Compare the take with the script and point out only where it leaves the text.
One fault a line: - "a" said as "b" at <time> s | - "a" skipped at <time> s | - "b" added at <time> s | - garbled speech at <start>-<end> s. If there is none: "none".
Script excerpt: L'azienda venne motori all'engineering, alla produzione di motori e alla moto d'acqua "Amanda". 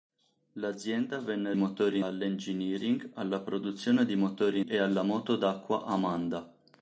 none